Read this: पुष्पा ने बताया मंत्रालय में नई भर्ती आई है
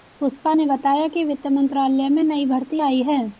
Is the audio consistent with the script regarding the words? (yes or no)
no